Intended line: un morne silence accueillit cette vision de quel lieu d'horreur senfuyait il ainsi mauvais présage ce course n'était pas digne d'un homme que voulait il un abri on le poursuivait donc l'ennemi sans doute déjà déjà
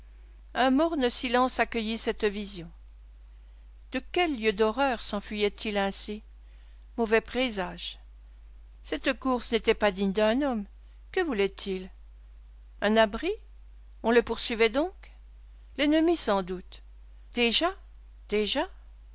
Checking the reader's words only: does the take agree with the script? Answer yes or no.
no